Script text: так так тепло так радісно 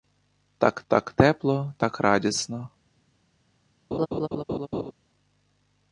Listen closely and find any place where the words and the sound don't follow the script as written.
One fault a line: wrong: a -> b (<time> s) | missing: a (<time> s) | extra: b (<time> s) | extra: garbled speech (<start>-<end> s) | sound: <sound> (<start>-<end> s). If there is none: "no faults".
sound: laugh (3.9-4.9 s)